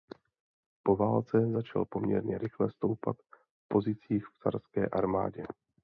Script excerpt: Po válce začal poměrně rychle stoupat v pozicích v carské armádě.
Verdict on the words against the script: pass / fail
pass